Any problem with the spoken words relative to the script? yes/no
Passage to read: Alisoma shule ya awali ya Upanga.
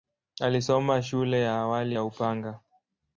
no